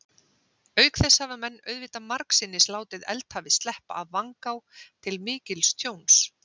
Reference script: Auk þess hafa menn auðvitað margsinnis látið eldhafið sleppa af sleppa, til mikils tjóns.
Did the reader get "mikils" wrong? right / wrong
right